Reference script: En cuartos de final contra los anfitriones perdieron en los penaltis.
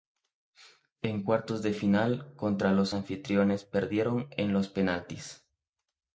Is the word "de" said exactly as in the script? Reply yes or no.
yes